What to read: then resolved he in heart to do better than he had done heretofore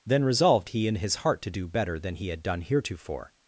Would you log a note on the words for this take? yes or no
yes